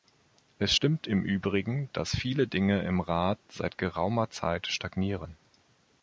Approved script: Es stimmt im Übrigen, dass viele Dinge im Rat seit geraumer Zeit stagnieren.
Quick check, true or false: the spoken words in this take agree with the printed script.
true